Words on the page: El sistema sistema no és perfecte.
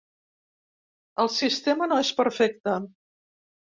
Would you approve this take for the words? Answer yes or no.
no